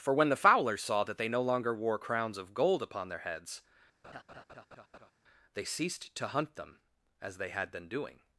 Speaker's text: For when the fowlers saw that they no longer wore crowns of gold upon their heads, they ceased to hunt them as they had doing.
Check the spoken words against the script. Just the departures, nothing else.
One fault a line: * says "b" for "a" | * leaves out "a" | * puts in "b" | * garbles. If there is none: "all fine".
* puts in "been"